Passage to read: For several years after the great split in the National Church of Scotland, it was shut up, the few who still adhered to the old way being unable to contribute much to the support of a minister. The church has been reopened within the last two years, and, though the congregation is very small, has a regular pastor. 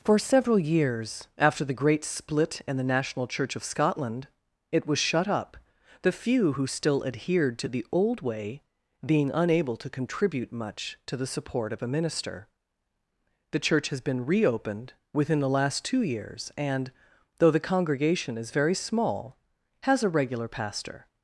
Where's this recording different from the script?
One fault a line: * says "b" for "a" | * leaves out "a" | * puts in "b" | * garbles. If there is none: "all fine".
all fine